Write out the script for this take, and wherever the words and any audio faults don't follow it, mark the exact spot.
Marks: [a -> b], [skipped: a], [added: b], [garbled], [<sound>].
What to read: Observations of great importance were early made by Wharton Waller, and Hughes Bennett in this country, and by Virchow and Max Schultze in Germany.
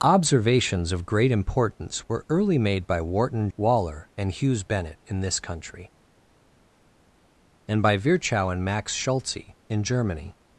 Observations of great importance were early made by Wharton Waller, and Hughes Bennett in this country, and by Virchow and Max Schultze in Germany.